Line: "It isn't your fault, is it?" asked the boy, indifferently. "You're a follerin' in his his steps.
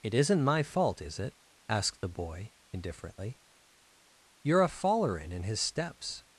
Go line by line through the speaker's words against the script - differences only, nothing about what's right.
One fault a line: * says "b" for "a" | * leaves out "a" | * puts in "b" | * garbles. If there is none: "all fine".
* says "my" for "your"
* leaves out "his"